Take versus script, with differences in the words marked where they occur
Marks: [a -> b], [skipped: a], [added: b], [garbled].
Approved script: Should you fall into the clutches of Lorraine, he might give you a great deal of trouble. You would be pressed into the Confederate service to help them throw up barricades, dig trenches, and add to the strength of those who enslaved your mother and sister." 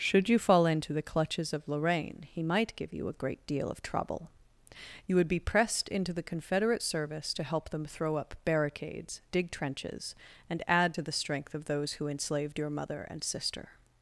Should you fall into the clutches of Lorraine, he might give you a great deal of trouble. You would be pressed into the Confederate service to help them throw up barricades, dig trenches, and add to the strength of those who enslaved your mother and sister."